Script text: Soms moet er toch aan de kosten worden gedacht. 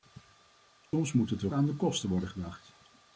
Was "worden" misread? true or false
false